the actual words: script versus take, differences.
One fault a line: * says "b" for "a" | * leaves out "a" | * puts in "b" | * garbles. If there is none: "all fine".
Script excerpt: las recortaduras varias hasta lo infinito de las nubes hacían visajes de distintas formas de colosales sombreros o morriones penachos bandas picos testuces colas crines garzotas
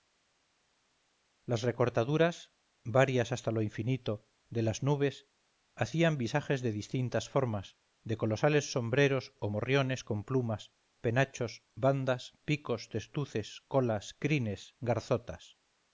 * puts in "con plumas"